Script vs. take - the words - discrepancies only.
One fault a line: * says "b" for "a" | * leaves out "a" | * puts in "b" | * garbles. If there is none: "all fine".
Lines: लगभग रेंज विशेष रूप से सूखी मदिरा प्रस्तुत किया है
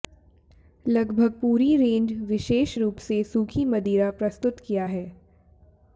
* puts in "पूरी"